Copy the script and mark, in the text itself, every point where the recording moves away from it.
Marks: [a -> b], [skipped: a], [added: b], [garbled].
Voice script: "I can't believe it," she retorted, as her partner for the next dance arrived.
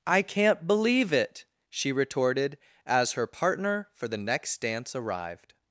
"I can't believe it," she retorted, as her partner for the next dance arrived.